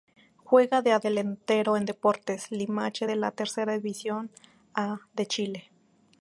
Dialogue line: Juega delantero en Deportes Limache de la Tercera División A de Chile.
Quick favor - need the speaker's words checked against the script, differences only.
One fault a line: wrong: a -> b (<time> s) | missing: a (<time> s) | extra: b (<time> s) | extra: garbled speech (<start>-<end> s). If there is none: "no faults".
extra: de (0.8 s)